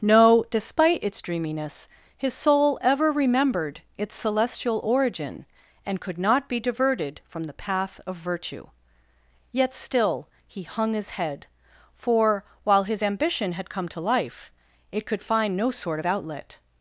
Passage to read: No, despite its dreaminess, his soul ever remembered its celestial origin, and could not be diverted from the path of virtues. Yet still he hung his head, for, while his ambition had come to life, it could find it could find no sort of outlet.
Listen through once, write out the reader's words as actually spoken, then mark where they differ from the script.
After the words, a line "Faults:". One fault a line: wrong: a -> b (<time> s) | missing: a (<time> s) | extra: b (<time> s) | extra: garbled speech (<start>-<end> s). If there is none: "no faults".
No, despite its dreaminess, his soul ever remembered its celestial origin, and could not be diverted from the path of virtue. Yet still he hung his head, for, while his ambition had come to life, it could find no sort of outlet.
Faults:
wrong: virtues -> virtue (8.2 s)
missing: it could find (15.6 s)